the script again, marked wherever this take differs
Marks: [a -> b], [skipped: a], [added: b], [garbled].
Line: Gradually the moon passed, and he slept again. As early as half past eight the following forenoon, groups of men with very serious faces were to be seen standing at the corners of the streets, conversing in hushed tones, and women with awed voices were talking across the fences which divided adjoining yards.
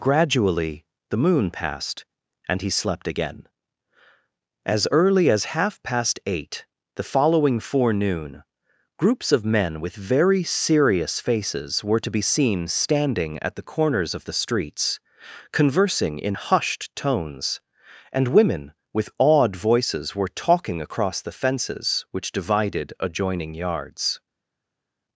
Gradually the moon passed, and he slept again. As early as half past eight the following forenoon, groups of men with very serious faces were to be seen standing at the corners of the streets, conversing in hushed tones, and women with awed voices were talking across the fences which divided adjoining yards.